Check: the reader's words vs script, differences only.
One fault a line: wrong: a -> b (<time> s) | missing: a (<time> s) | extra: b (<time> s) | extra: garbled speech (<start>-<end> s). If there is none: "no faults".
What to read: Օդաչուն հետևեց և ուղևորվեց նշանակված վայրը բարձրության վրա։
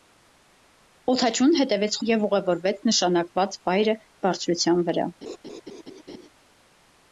no faults